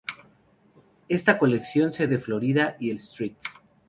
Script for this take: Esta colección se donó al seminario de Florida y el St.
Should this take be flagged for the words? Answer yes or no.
yes